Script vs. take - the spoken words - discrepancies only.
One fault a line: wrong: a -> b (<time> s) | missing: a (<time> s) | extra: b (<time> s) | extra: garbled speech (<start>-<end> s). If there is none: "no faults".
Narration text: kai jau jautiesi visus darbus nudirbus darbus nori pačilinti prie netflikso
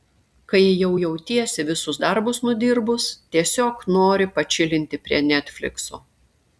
wrong: darbus -> tiesiog (3.4 s)